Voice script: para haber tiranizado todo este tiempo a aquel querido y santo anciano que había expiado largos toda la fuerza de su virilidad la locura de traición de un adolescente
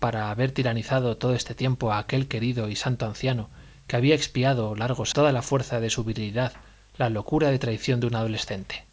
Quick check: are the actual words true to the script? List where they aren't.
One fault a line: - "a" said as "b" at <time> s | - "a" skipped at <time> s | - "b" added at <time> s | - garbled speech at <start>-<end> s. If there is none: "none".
none